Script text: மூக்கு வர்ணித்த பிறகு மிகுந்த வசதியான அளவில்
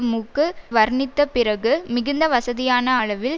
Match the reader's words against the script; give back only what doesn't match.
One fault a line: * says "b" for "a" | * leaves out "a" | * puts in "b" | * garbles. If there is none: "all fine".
all fine